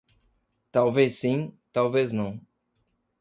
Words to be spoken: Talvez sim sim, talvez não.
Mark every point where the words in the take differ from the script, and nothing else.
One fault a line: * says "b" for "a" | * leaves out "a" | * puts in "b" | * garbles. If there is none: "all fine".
* leaves out "sim"